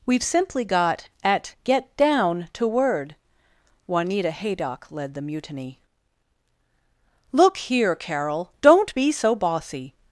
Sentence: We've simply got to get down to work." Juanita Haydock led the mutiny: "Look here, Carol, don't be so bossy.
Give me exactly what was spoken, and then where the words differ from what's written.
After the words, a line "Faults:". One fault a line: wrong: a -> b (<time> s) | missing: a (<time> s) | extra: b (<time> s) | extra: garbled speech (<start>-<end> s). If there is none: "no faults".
We've simply got at get down to word." Juanita Haydock led the mutiny: "Look here, Carol, don't be so bossy.
Faults:
wrong: to -> at (1.2 s)
wrong: work -> word (2.7 s)